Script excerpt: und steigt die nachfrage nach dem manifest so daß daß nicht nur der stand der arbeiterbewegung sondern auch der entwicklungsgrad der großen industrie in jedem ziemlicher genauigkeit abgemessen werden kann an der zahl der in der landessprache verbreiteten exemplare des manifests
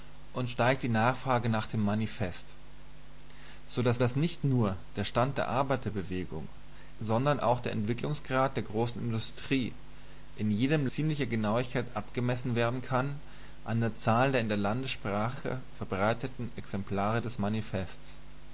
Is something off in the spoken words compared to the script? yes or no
no